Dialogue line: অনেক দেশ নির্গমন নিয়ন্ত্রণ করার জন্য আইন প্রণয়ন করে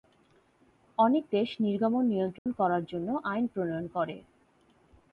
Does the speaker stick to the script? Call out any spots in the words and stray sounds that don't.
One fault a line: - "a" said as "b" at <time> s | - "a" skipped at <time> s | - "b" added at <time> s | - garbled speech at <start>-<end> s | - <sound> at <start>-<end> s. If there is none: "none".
- dropout at 2.4-2.5 s